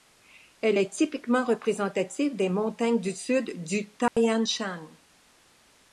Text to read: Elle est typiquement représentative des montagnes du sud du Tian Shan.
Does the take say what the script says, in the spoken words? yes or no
yes